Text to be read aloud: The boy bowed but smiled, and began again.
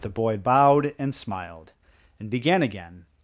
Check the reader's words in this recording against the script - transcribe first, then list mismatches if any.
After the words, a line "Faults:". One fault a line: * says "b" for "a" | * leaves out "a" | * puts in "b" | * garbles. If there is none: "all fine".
The boy bowed and smiled, and began again.
Faults:
* says "and" for "but"